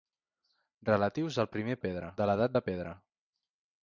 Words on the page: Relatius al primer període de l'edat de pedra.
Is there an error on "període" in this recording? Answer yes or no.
yes